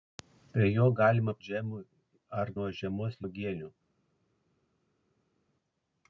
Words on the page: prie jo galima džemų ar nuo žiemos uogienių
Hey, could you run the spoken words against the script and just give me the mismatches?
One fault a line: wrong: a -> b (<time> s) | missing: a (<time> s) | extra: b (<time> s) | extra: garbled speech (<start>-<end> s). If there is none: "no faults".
no faults